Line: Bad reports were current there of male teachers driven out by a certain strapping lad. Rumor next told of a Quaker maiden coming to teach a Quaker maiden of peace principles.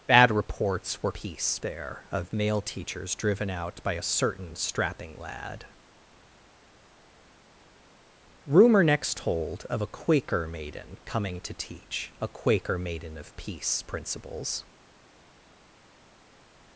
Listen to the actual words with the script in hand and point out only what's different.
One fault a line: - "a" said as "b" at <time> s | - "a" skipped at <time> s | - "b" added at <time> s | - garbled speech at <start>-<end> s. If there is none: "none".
- "current" said as "peace" at 1.1 s